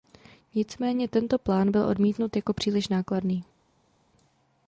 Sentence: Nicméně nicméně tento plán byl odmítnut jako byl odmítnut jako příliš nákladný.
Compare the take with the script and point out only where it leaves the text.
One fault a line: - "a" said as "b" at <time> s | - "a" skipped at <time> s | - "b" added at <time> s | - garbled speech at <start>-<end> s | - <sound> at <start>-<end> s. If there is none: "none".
- "nicméně" skipped at 1.1 s
- "byl odmítnut jako" skipped at 2.5 s